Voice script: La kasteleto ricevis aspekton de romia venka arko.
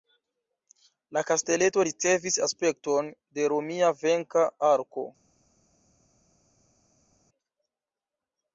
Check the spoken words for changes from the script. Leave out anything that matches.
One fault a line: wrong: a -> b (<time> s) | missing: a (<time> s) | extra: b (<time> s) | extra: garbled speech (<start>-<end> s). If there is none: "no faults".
no faults